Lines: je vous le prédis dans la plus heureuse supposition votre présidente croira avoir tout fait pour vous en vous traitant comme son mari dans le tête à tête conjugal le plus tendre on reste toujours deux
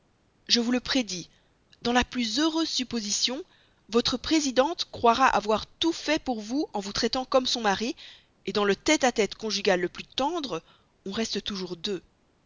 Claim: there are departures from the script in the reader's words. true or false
false